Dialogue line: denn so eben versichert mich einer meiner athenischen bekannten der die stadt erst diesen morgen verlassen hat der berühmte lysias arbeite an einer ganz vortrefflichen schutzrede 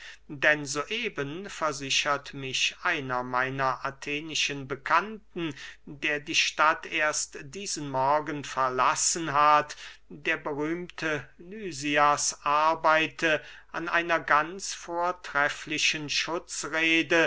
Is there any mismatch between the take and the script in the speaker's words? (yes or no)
no